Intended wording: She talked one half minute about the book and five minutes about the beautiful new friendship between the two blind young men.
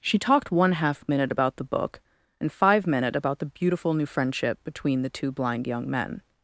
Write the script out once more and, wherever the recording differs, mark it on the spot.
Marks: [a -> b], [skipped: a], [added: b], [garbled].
She talked one half minute about the book and five [minutes -> minute] about the beautiful new friendship between the two blind young men.